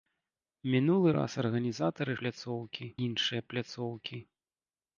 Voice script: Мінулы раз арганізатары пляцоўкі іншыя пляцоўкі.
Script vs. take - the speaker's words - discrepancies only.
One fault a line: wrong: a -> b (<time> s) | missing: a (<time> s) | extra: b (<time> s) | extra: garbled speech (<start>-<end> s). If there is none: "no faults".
no faults